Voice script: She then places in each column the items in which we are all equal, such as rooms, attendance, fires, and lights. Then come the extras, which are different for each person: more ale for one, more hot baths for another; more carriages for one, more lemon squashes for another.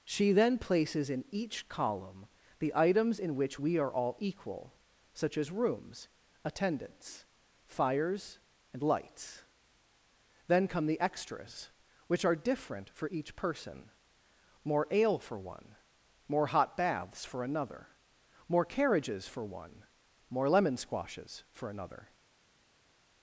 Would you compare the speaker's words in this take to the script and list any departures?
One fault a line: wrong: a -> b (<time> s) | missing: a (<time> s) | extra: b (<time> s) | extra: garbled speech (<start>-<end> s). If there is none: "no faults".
no faults